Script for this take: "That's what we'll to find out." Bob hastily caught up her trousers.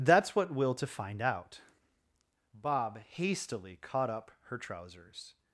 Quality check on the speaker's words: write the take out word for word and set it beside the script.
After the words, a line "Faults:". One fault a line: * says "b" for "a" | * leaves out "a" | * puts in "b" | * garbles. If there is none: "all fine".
"That's what we'll to find out." Bob hastily caught up her trousers.
Faults:
all fine